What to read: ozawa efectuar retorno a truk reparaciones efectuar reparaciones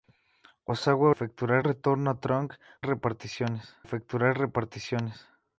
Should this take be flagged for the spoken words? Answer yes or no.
no